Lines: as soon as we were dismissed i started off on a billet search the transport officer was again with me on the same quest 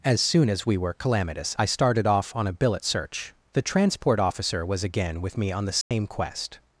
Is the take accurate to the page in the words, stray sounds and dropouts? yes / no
no